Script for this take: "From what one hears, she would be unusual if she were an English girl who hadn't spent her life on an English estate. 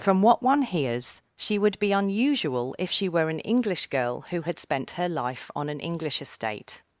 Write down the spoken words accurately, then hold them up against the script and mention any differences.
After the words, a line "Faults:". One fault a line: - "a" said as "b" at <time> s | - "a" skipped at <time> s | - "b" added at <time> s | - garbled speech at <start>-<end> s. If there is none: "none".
"From what one hears, she would be unusual if she were an English girl who had spent her life on an English estate.
Faults:
- "hadn't" said as "had" at 4.4 s